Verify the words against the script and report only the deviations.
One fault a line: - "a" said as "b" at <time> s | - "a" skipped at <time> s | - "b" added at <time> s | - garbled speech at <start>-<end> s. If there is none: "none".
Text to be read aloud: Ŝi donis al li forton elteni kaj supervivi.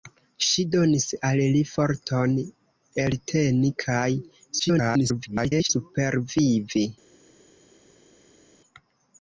- garbled speech at 4.6-5.7 s